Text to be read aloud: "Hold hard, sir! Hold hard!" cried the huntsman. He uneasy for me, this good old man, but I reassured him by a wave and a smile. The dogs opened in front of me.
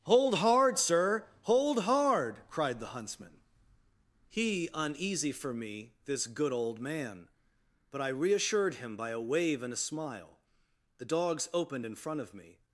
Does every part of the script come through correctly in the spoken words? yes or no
yes